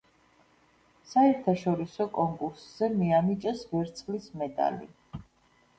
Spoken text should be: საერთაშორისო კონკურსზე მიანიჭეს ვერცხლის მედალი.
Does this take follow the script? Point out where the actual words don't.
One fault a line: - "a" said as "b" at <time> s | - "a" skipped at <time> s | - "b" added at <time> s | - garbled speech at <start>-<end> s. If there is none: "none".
none